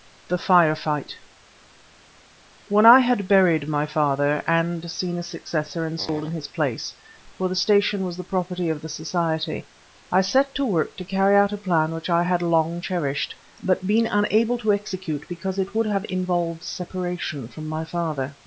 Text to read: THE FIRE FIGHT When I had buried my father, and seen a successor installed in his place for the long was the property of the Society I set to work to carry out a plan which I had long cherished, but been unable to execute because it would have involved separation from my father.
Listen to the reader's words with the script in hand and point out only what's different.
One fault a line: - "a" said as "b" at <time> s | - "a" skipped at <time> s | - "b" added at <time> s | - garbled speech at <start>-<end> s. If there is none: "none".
- "long" said as "station" at 7.5 s